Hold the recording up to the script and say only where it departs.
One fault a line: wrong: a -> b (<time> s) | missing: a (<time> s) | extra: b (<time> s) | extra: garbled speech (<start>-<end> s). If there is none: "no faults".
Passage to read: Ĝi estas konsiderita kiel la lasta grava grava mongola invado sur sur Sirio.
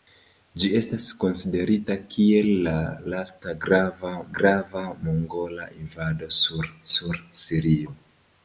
no faults